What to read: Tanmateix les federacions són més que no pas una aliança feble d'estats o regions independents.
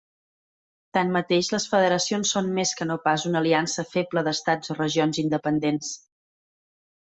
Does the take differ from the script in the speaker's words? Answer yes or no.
no